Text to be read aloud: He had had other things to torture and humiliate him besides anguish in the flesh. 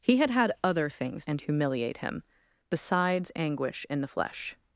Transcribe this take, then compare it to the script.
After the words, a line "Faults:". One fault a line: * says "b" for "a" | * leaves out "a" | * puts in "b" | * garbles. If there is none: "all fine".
He had had other things and humiliate him besides anguish in the flesh.
Faults:
* leaves out "to torture"